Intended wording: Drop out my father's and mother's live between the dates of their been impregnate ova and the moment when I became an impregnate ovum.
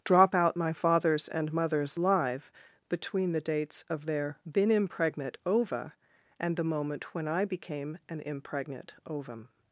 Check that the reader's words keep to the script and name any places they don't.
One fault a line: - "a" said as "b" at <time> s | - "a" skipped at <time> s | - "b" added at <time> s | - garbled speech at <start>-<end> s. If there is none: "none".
none